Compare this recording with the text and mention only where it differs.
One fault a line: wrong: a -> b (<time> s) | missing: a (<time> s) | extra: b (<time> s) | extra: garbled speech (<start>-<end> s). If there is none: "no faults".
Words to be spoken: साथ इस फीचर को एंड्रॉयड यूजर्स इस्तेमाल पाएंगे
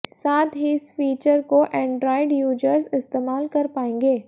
extra: ही (0.6 s)
extra: कर (3.5 s)